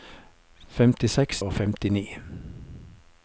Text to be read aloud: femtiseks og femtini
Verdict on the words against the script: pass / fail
pass